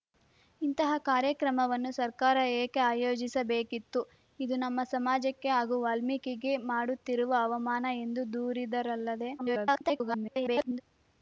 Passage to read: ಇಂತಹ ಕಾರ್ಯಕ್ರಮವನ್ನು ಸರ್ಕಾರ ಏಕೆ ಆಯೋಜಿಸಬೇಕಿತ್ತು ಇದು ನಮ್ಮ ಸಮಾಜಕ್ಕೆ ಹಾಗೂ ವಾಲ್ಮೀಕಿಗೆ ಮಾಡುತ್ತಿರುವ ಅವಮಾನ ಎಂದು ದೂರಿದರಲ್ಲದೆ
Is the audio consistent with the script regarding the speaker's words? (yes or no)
no